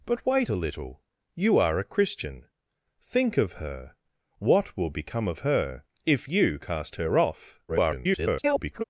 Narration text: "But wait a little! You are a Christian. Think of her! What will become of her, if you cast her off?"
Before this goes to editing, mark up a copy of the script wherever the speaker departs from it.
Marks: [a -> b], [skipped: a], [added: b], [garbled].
"But wait a little! You are a Christian. Think of her! What will become of her, if you cast her off?" [garbled]